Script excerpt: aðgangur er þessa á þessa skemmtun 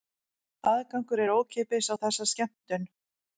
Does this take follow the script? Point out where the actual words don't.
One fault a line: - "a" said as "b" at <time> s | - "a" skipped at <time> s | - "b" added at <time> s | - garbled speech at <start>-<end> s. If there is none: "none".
- "þessa" said as "ókeypis" at 1.3 s